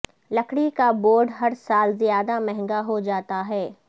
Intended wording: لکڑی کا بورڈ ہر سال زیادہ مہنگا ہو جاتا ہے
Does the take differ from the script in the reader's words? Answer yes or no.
no